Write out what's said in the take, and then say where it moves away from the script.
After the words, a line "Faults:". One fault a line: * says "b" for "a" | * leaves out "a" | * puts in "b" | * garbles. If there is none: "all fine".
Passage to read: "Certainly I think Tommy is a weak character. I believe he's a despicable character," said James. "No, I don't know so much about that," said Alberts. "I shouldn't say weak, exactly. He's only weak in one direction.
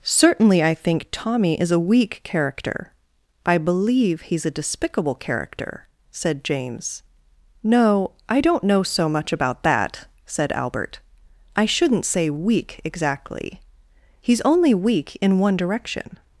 "Certainly I think Tommy is a weak character. I believe he's a despicable character," said James. "No, I don't know so much about that," said Albert. "I shouldn't say weak, exactly. He's only weak in one direction.
Faults:
* says "Albert" for "Alberts"